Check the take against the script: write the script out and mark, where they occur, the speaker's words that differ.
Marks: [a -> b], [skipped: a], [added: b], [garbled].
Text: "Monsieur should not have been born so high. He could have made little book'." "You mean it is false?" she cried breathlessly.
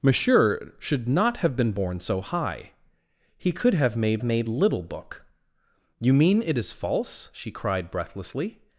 "Monsieur should not have been born so high. He could have made [added: made] little book'." "You mean it is false?" she cried breathlessly.